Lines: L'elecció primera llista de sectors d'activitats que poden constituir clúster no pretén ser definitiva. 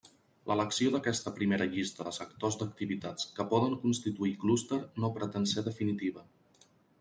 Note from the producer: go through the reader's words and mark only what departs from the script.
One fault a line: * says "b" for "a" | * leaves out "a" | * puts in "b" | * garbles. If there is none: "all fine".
* puts in "d'aquesta"